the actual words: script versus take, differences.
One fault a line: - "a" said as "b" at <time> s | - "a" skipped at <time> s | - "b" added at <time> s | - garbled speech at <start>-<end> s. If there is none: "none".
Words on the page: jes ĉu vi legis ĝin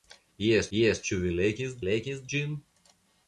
- "jes" added at 0.8 s
- "legis" added at 1.9 s